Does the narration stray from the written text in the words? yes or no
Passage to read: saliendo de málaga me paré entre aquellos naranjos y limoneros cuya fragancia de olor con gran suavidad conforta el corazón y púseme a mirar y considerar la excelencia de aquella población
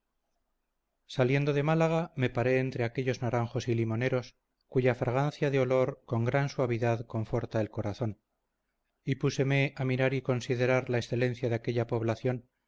no